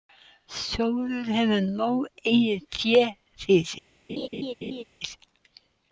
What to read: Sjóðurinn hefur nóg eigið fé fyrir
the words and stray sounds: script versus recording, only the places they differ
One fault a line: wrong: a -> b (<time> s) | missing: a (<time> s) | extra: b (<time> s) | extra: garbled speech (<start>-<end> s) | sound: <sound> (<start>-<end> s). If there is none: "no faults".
sound: laugh (4.1-4.8 s)